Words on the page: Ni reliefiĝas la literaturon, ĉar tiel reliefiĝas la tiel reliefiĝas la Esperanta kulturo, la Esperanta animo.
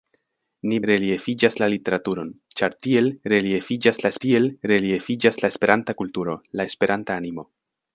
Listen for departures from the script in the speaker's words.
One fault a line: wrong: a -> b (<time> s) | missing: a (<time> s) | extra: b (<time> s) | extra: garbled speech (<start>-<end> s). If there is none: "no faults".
no faults